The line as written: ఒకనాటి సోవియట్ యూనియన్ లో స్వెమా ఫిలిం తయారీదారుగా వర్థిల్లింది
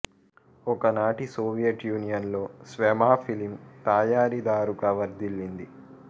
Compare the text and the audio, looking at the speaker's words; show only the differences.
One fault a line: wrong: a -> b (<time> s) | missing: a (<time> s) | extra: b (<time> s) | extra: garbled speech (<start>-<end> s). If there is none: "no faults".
no faults